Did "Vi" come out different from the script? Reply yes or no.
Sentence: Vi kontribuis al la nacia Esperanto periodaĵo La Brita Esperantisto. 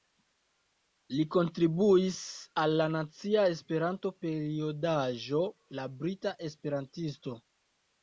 yes